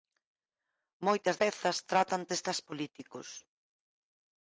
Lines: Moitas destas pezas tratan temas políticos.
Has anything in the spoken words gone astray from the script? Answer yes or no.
yes